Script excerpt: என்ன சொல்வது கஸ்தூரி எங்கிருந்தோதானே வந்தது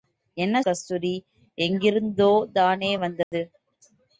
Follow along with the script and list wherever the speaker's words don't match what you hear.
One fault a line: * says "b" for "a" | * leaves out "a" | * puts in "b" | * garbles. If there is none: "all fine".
* leaves out "சொல்வது"